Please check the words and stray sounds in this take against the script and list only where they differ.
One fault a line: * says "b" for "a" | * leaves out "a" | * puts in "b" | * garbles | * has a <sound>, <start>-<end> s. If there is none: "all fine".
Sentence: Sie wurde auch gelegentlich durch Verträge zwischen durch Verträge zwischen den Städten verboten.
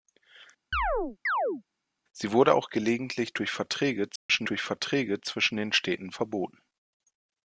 * has a chirp, 0.7-1.6 s
* has a dropout, 4.2-4.3 s